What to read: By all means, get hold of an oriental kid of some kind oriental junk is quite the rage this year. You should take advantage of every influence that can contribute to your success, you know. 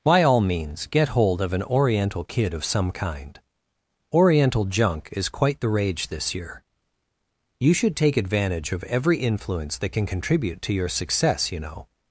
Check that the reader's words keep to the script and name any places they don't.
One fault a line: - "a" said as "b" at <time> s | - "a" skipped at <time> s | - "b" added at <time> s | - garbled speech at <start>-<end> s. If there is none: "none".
none